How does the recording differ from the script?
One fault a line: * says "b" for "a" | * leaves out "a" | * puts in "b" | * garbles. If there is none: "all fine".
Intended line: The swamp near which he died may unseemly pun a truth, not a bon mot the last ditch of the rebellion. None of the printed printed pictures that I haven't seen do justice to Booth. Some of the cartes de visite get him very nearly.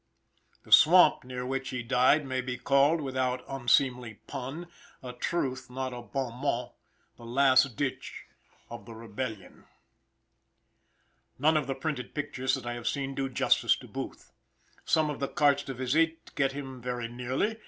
* puts in "be called without"
* leaves out "printed"
* says "have" for "haven't"